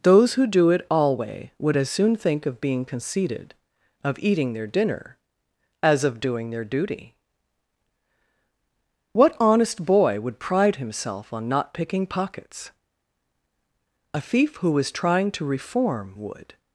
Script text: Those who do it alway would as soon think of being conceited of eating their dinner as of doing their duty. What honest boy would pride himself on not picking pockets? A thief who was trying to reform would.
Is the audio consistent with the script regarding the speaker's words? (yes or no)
yes